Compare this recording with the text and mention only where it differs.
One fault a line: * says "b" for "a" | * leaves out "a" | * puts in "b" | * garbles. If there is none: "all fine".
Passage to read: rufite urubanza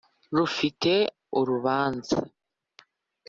all fine